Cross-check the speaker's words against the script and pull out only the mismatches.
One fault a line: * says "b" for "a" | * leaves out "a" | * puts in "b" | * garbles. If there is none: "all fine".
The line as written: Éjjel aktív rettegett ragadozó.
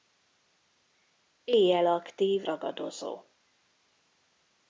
* leaves out "rettegett"